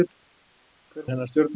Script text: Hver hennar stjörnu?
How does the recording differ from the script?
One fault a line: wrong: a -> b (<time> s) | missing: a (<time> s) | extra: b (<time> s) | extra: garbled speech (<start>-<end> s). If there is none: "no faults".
no faults